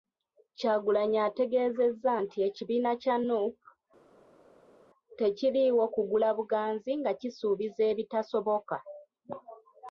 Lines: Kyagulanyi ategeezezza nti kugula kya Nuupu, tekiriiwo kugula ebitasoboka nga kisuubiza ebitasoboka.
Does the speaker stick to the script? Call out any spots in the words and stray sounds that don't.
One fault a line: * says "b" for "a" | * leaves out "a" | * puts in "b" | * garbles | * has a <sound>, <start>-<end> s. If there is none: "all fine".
* says "ekibiina" for "kugula"
* says "buganzi" for "ebitasoboka"